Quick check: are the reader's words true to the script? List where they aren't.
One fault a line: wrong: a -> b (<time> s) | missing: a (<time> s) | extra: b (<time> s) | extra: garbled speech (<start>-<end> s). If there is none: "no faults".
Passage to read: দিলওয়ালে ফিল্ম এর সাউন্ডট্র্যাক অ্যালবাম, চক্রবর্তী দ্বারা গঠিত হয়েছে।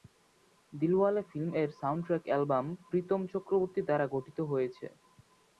extra: প্রীতম (2.9 s)